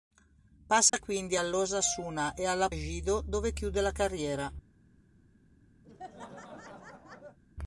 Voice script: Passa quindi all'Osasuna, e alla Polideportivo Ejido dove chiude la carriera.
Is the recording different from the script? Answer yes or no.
yes